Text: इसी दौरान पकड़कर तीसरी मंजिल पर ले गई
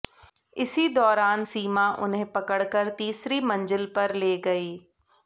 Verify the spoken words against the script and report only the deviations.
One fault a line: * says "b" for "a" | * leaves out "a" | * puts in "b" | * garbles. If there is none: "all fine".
* puts in "सीमा उन्हें"